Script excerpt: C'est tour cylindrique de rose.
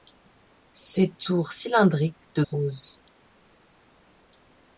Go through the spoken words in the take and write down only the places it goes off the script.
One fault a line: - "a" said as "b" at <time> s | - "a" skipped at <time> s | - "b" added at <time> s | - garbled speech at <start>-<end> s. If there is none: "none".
none